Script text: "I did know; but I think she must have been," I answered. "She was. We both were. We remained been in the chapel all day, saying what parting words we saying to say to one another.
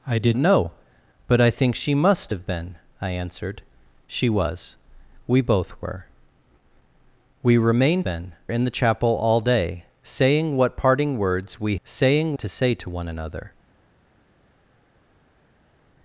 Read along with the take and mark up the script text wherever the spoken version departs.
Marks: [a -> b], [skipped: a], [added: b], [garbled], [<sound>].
"I did know; but I think she must have been," I answered. "She was. We both were. We remained been in the chapel all day, saying what parting words we saying to say to one another.